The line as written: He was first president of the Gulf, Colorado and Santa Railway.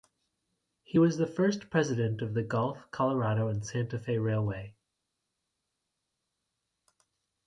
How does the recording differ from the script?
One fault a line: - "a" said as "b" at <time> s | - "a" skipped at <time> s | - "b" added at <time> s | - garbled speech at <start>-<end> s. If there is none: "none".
- "the" added at 1.2 s
- "Fe" added at 4.0 s